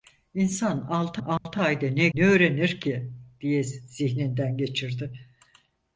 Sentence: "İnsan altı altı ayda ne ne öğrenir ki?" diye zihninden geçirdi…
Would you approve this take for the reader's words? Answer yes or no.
yes